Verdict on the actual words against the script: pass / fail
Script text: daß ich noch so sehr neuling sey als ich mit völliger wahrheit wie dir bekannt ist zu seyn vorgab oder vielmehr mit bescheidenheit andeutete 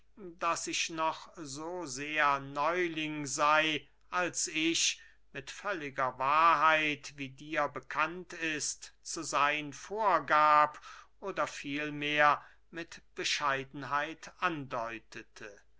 pass